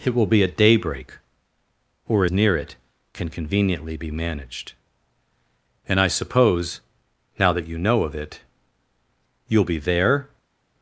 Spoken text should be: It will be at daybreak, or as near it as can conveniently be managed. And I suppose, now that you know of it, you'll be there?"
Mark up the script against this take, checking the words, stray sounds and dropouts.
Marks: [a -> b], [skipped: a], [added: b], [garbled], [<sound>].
It will be at daybreak, or [skipped: as] near it [skipped: as] can conveniently be managed. And I suppose, now that you know of it, you'll be there?"